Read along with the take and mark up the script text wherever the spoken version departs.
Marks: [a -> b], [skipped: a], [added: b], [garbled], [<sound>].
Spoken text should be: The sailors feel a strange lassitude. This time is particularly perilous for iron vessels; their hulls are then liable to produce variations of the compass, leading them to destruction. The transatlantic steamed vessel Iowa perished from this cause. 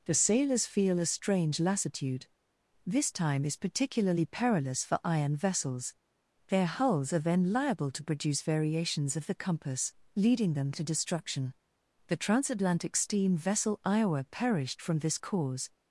The sailors feel a strange lassitude. This time is particularly perilous for iron vessels; their hulls are then liable to produce variations of the compass, leading them to destruction. The transatlantic [steamed -> steam] vessel Iowa perished from this cause.